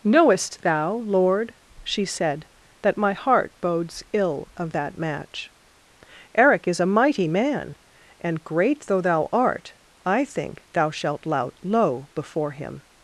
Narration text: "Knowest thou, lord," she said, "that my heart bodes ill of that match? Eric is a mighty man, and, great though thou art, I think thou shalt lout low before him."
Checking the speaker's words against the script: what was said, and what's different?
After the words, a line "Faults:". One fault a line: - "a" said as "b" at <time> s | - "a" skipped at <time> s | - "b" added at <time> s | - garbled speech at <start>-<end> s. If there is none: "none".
"Knowest thou, lord," she said, "that my heart bodes ill of that match? Eric is a mighty man, and, great though thou art, I think thou shalt lout low before him."
Faults:
none